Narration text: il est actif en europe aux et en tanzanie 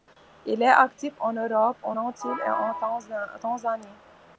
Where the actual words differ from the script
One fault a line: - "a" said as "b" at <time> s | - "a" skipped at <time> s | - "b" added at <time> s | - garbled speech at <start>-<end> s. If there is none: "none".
- "antilles" added at 1.9 s